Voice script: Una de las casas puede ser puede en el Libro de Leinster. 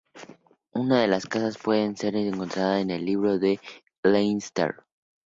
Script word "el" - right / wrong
right